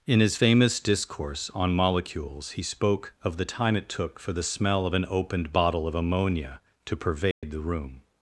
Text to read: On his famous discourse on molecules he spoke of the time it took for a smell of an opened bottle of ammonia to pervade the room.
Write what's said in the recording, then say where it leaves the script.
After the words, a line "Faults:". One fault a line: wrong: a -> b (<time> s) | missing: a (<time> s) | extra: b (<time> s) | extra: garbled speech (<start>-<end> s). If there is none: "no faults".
In his famous discourse on molecules he spoke of the time it took for the smell of an opened bottle of ammonia to pervade the room.
Faults:
wrong: On -> In (0.1 s)
wrong: a -> the (4.3 s)